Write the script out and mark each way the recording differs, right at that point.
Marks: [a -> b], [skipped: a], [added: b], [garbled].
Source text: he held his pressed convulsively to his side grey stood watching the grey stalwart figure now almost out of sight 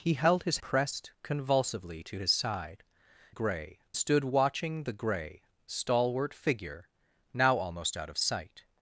he held his pressed convulsively to his side grey stood watching the grey stalwart figure now almost out of sight